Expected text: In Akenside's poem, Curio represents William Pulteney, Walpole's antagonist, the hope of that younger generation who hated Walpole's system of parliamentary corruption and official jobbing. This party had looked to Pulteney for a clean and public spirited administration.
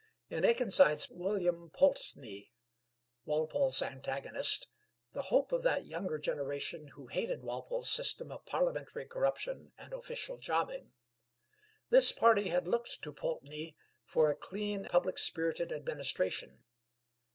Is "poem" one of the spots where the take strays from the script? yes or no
yes